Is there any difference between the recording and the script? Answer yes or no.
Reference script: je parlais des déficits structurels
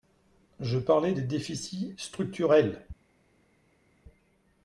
no